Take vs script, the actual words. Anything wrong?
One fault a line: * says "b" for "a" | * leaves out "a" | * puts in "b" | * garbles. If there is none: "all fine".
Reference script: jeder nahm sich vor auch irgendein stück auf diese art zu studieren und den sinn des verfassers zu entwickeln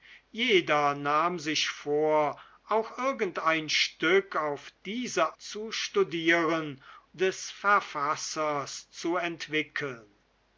* leaves out "art"
* leaves out "und den sinn"